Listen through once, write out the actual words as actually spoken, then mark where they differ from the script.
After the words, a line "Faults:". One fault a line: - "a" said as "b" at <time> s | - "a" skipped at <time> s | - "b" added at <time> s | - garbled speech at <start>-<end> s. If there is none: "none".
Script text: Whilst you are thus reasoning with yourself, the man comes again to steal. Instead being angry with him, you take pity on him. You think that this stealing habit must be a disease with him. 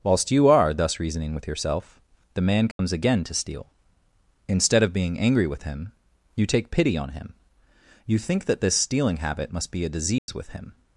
Whilst you are thus reasoning with yourself, the man comes again to steal. Instead of being angry with him, you take pity on him. You think that this stealing habit must be a disease with him.
Faults:
- "of" added at 4.8 s